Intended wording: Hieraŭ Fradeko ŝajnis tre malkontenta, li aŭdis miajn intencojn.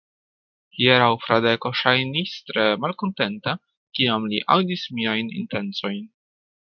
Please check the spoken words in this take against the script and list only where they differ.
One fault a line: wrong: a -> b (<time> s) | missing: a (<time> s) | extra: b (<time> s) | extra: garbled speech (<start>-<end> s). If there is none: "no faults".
extra: kiam (4.0 s)